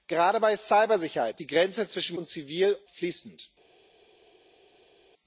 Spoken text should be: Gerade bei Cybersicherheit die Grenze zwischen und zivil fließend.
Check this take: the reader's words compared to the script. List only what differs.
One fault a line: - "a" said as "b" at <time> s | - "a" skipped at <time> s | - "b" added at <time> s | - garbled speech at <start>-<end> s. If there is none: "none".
none